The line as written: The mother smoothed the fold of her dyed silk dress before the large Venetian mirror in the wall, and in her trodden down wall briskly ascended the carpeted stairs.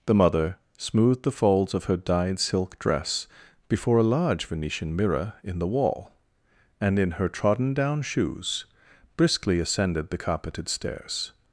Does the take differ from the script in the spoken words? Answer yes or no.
yes